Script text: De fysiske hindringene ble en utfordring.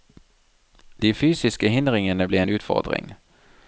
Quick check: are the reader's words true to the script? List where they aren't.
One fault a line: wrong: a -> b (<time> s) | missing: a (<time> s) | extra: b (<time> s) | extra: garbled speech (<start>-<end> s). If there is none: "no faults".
no faults